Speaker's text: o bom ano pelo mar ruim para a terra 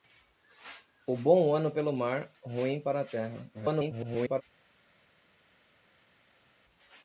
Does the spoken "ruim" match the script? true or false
true